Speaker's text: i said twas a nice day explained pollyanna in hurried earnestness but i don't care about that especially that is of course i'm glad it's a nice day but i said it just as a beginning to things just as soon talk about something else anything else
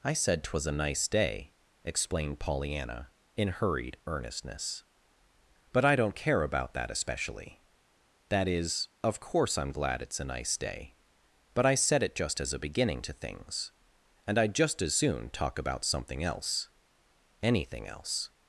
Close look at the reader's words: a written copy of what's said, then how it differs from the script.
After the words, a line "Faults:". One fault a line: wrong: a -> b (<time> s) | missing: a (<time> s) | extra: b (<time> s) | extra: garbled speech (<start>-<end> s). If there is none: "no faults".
i said twas a nice day explained pollyanna in hurried earnestness but i don't care about that especially that is of course i'm glad it's a nice day but i said it just as a beginning to things and i'd just as soon talk about something else anything else
Faults:
extra: and i'd (14.3 s)